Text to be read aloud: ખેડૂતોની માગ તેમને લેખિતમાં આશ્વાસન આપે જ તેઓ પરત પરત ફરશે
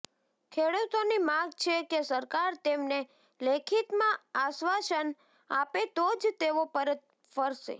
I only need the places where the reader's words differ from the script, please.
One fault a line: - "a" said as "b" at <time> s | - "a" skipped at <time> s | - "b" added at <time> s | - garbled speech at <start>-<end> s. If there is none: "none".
- "છે કે સરકાર" added at 1.6 s
- "તો" added at 5.9 s
- "પરત" skipped at 7.0 s